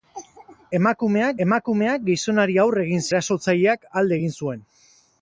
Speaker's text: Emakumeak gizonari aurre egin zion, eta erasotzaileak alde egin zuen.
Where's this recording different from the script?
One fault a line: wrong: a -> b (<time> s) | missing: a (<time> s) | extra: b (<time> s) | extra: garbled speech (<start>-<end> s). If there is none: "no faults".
extra: emakumeak (1.4 s)
missing: zion eta (3.1 s)